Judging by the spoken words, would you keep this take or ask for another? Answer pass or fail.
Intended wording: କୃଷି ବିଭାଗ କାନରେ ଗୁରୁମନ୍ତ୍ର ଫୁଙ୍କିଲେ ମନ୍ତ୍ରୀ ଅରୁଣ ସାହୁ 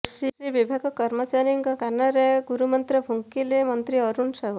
fail